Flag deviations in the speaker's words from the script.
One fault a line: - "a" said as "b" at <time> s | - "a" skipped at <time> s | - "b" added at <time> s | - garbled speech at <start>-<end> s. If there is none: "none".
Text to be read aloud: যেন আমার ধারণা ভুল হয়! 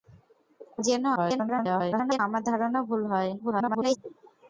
- garbled speech at 1.2-2.2 s
- garbled speech at 3.4-4.0 s